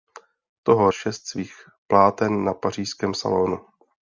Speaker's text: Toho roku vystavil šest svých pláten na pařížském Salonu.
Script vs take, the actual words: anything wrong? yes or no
yes